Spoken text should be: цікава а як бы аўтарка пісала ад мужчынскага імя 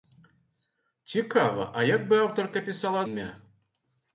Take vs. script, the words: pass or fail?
fail